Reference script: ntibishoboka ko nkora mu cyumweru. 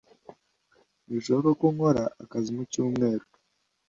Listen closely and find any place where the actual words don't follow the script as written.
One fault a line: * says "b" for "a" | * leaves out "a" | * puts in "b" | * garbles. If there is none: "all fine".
* puts in "akazi"